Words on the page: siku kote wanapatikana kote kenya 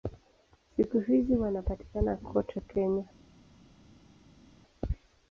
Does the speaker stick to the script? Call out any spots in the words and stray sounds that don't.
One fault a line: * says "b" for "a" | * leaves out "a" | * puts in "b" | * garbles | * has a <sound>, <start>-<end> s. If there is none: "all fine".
* says "hizi" for "kote"